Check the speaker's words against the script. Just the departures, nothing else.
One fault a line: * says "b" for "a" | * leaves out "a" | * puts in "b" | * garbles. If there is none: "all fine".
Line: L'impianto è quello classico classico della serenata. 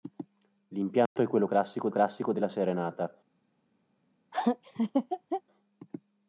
all fine